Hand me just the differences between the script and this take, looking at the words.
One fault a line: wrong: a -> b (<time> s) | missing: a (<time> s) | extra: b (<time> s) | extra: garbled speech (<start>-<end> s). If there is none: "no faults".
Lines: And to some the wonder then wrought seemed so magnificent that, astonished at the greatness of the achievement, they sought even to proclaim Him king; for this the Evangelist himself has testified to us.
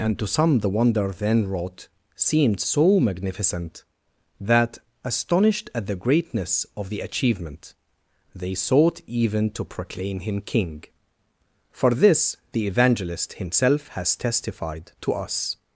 no faults